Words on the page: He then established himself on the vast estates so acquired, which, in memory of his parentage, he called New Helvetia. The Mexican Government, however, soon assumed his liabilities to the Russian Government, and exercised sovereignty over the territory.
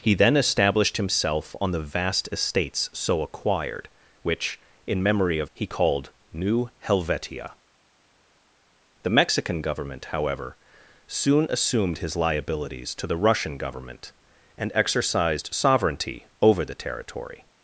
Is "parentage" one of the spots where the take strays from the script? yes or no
yes